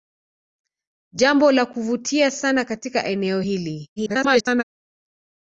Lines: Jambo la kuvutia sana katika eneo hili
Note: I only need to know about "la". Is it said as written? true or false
true